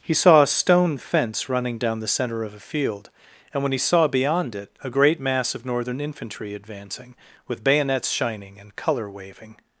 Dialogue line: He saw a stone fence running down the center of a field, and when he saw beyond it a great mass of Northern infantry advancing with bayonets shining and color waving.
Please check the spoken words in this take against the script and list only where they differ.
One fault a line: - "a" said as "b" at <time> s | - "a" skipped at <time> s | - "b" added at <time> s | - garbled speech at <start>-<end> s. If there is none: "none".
none